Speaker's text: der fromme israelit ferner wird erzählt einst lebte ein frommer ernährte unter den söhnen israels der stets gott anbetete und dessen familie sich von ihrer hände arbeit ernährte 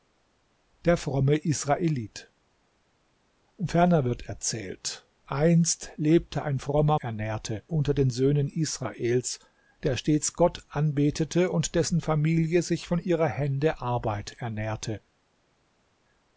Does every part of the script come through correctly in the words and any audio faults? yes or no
yes